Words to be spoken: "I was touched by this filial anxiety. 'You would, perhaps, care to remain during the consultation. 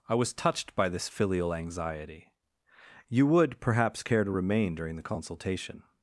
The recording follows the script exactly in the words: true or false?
true